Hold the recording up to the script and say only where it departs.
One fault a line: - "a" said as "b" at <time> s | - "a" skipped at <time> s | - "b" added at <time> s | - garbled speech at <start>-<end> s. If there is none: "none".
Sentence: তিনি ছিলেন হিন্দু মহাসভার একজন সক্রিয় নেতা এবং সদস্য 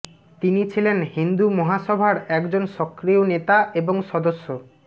none